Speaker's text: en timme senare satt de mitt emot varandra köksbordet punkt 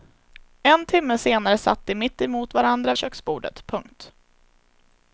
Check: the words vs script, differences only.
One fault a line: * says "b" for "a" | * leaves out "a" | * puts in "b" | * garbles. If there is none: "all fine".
all fine